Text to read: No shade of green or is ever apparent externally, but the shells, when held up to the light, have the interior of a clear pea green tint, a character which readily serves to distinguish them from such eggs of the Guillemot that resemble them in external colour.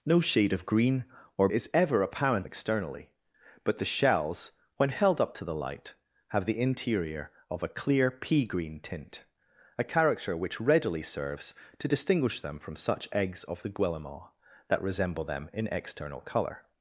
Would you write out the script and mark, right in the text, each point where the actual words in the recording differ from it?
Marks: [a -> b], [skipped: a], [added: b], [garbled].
No shade of green or is ever apparent externally, but the shells, when held up to the light, have the interior of a clear pea green tint, a character which readily serves to distinguish them from such eggs of the Guillemot that resemble them in external colour.